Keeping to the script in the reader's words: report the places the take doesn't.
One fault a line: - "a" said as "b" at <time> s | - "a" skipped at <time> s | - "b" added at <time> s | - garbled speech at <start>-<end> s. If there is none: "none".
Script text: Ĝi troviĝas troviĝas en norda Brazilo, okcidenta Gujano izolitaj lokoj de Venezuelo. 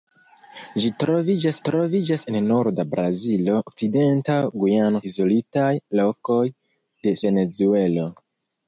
none